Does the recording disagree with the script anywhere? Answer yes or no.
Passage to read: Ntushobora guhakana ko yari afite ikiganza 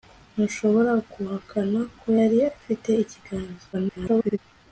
yes